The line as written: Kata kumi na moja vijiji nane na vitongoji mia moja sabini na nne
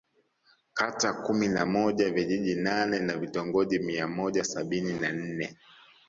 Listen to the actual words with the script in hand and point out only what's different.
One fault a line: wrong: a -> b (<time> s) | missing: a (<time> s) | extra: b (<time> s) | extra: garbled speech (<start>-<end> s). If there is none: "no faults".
no faults